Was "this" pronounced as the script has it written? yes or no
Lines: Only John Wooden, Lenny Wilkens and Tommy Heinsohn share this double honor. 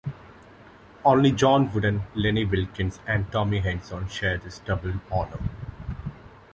yes